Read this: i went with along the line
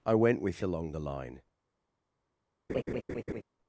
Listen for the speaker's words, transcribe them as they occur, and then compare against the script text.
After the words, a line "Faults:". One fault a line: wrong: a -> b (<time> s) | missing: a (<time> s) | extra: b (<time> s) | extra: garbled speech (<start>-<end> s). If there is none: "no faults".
i went with along the line
Faults:
no faults